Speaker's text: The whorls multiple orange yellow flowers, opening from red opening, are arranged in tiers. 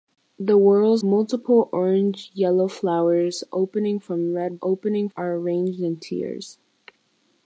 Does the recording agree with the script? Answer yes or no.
yes